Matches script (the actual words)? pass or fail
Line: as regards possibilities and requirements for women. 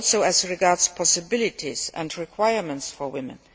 pass